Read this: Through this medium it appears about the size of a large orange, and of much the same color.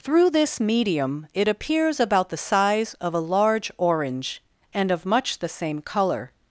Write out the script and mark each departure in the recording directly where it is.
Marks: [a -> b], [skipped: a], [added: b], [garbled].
Through this medium it appears about the size of a large orange, and of much the same color.